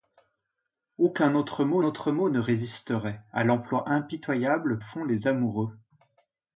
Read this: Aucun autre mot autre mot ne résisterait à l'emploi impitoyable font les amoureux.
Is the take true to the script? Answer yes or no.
yes